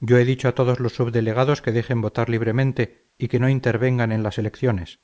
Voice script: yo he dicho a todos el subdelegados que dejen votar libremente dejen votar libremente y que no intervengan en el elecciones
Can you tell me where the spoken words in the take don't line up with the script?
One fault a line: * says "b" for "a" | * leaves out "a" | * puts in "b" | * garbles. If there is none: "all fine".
* says "los" for "el"
* leaves out "dejen votar libremente"
* says "las" for "el"